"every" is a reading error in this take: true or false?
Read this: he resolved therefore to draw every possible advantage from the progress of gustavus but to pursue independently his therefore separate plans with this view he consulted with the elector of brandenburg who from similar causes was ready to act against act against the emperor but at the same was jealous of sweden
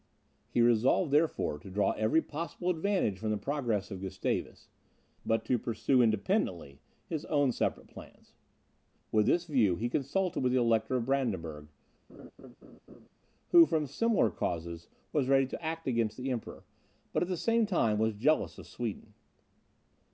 false